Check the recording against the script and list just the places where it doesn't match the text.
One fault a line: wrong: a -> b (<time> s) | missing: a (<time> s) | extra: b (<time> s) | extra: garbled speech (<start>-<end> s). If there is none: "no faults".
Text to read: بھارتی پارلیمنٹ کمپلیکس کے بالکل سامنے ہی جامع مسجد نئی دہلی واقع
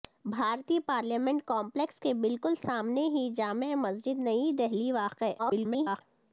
extra: garbled speech (5.4-6.0 s)